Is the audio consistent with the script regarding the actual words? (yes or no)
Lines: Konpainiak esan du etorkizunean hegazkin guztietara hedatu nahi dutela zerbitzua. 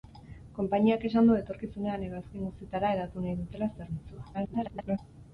no